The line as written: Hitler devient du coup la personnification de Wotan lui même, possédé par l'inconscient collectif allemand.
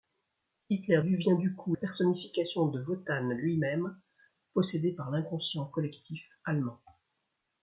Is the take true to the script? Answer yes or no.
no